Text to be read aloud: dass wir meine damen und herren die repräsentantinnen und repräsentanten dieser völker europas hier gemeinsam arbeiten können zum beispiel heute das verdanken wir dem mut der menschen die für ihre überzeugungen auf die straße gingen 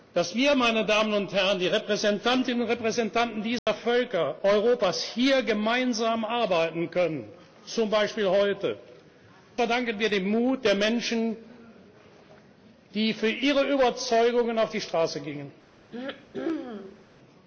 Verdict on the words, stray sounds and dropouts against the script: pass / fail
fail